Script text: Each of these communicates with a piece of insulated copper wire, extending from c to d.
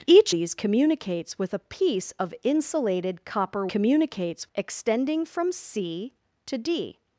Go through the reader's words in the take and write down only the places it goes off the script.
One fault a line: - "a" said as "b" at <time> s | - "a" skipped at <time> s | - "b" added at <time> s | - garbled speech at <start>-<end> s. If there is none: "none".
- "of" skipped at 0.3 s
- "wire" said as "communicates" at 3.7 s